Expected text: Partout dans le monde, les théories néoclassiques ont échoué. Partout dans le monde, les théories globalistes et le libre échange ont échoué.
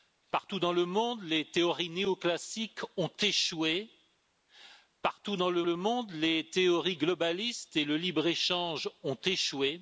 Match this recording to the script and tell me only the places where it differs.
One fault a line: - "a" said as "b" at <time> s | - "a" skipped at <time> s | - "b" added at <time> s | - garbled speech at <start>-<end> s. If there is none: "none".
- "le" added at 5.6 s